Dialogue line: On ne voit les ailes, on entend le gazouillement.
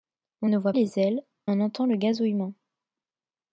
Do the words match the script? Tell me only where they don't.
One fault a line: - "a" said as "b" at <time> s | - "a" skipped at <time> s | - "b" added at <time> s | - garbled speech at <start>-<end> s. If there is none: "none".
none